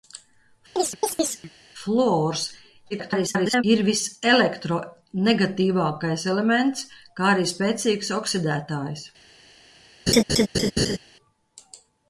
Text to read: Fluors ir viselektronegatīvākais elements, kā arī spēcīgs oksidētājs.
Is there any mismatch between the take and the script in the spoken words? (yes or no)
yes